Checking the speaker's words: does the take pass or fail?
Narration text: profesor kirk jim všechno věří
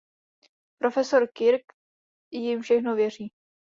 pass